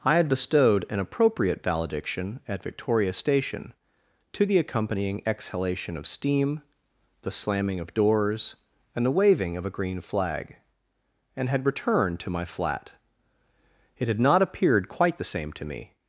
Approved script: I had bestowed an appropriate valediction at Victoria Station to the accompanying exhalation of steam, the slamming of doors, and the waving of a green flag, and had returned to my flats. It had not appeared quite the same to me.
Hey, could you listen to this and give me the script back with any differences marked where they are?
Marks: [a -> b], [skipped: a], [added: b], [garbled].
I had bestowed an appropriate valediction at Victoria Station to the accompanying exhalation of steam, the slamming of doors, and the waving of a green flag, and had returned to my [flats. -> flat] It had not appeared quite the same to me.